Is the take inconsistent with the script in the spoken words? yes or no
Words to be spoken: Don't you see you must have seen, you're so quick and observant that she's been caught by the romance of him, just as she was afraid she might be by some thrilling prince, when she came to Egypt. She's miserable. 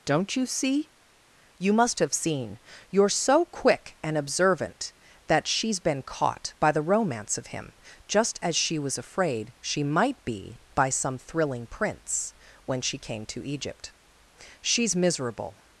no